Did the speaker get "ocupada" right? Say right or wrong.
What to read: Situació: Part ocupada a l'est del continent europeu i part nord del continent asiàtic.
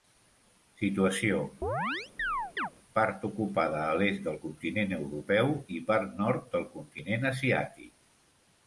right